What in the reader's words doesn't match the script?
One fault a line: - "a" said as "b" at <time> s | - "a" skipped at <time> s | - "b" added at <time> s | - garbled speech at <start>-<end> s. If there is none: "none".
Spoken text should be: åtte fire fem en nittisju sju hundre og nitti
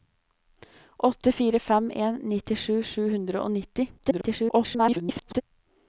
- garbled speech at 4.0-5.4 s